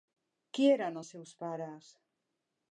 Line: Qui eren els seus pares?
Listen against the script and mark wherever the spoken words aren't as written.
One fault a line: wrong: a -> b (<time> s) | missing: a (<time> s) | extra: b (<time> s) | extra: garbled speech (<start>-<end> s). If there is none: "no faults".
no faults